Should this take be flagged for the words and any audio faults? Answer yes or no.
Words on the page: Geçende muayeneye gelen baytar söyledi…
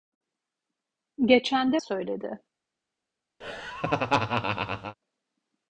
yes